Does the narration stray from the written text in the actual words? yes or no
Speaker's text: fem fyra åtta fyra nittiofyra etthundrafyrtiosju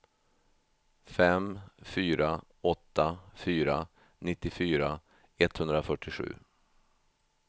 no